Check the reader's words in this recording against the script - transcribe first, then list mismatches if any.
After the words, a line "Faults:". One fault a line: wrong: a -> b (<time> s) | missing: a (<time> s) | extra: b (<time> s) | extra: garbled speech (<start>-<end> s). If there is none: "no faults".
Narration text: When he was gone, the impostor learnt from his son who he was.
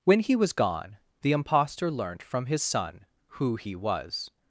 When he was gone, the impostor learnt from his son who he was.
Faults:
no faults